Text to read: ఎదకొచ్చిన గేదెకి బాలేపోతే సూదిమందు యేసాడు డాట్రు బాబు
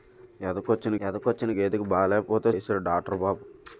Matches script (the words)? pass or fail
fail